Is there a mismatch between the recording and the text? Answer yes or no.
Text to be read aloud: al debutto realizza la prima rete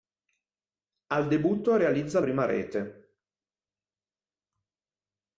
yes